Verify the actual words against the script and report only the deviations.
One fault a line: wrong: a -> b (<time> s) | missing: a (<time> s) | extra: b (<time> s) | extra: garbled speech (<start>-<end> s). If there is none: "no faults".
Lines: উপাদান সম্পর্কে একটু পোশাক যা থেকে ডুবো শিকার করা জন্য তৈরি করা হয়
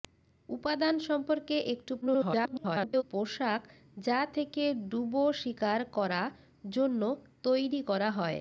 extra: garbled speech (2.0-3.0 s)